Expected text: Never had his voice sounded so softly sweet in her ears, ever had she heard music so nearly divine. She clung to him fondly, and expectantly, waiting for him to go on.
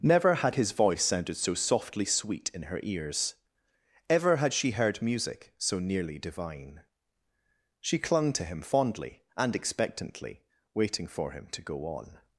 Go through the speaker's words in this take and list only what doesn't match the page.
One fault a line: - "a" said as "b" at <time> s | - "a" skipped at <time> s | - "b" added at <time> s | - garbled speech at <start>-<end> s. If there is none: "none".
none